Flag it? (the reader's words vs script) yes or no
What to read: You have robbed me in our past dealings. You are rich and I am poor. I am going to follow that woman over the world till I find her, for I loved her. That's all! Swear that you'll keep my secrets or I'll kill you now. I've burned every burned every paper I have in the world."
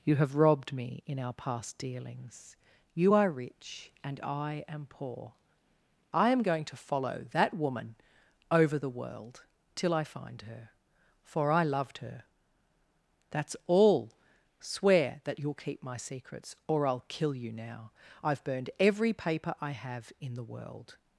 yes